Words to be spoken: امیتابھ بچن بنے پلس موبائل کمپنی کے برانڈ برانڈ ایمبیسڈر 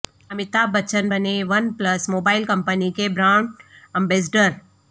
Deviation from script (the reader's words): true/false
true